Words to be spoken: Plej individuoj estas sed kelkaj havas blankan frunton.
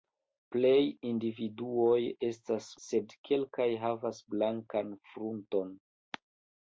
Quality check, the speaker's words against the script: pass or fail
pass